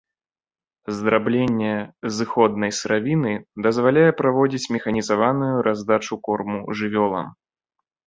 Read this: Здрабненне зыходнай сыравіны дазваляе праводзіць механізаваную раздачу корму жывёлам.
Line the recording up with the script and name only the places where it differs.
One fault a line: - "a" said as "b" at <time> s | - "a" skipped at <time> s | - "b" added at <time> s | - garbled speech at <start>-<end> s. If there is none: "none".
none